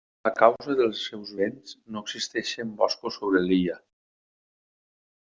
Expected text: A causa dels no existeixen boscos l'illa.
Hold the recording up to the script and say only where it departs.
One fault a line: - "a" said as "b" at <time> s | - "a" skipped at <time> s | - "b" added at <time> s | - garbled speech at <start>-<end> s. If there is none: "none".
- "seus vents" added at 1.1 s
- "sobre" added at 3.2 s